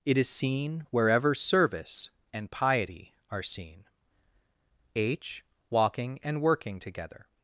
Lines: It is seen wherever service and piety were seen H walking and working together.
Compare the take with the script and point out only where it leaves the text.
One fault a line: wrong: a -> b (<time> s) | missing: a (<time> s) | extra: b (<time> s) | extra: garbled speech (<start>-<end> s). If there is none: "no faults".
wrong: were -> are (3.3 s)